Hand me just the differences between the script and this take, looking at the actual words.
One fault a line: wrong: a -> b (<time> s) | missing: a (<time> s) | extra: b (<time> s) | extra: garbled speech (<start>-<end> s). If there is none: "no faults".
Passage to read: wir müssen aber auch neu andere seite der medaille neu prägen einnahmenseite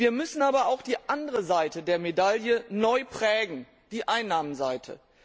wrong: neu -> die (0.8 s)
extra: die (3.9 s)